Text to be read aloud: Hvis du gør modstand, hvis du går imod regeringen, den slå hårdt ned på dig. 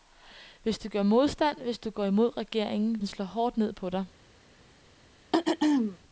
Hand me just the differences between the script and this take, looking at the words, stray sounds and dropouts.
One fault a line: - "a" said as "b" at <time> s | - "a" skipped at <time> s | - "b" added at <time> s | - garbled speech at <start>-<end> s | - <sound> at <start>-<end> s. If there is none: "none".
- throat clearing at 5.3-6.0 s